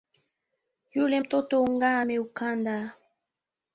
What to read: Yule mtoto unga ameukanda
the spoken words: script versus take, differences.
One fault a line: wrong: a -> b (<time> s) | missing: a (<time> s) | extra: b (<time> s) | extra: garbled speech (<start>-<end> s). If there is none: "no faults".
no faults